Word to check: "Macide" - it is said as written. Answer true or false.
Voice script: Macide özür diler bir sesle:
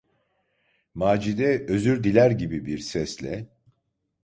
true